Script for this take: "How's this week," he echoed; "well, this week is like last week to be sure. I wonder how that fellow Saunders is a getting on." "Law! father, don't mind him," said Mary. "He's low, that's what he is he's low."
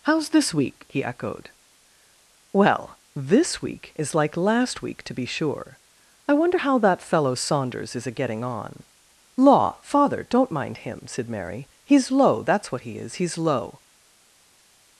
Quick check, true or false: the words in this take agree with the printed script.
true